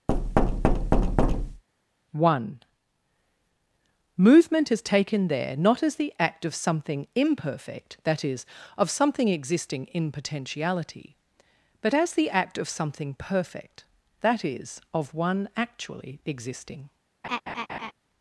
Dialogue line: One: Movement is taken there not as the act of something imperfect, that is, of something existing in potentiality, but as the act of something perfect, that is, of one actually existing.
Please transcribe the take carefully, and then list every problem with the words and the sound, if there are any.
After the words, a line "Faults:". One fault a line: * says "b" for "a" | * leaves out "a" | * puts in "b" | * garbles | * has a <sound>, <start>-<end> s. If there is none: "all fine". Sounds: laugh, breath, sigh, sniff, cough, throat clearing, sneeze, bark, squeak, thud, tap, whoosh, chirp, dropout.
One: Movement is taken there not as the act of something imperfect, that is, of something existing in potentiality, but as the act of something perfect, that is, of one actually existing.
Faults:
* has a thud, 0.1-1.6 s
* has a laugh, 17.2-17.9 s